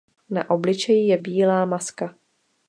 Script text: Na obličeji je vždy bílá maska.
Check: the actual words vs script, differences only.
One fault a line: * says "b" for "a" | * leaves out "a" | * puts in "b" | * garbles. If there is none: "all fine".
* leaves out "vždy"